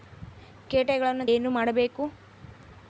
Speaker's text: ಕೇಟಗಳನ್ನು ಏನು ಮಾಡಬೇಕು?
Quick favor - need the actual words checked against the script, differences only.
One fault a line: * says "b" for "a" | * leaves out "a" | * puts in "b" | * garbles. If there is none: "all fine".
all fine